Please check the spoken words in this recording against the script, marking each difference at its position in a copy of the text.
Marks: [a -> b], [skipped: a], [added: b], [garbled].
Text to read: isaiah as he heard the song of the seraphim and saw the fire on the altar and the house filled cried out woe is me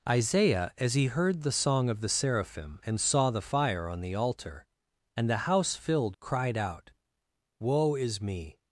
isaiah as he heard the song of the seraphim and saw the fire on the altar and the house filled cried out woe is me